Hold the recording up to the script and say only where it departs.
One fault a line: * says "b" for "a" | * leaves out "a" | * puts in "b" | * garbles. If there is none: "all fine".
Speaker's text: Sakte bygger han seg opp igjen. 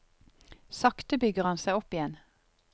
all fine